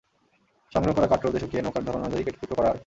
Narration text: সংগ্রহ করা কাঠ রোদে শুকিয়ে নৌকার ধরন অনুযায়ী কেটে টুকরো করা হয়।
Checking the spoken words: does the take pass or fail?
pass